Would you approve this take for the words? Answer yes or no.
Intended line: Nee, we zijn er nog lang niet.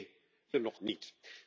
no